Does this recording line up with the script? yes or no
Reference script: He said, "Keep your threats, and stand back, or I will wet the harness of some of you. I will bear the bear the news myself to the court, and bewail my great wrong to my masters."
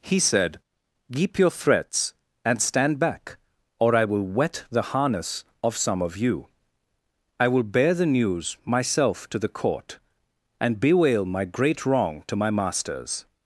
no